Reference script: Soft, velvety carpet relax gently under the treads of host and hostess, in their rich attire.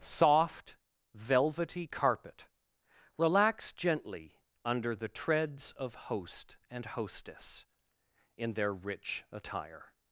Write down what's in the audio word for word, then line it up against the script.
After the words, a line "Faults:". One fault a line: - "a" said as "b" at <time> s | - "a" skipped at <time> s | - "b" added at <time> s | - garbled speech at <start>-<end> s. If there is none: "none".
Soft, velvety carpet relax gently under the treads of host and hostess, in their rich attire.
Faults:
none